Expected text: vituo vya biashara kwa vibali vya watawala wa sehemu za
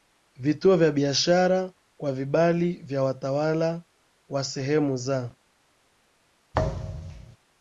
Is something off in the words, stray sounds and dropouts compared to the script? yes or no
yes